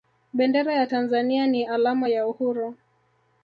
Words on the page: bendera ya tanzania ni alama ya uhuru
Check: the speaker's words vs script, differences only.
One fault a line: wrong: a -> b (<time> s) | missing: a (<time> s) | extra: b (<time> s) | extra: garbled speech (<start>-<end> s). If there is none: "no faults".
no faults